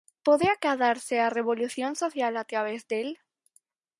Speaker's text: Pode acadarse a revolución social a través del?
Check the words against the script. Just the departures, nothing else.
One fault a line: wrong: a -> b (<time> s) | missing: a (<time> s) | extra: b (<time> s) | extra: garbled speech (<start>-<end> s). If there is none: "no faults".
no faults